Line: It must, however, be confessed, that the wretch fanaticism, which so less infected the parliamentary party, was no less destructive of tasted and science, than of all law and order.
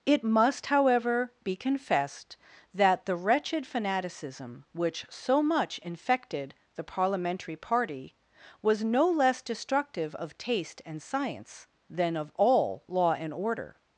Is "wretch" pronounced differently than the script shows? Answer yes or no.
yes